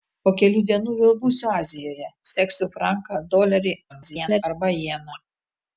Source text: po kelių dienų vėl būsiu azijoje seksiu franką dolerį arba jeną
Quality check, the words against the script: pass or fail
fail